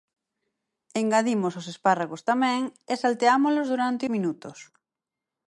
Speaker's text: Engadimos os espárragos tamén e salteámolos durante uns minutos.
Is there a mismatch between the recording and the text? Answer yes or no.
yes